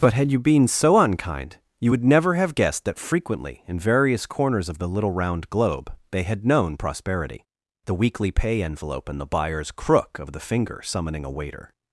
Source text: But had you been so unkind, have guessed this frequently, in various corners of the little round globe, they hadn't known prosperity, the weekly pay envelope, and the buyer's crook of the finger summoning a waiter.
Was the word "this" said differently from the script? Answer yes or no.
yes